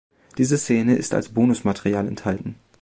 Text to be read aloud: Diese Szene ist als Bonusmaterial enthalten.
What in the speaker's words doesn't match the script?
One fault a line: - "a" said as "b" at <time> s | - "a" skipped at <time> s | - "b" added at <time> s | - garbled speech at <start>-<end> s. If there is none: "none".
none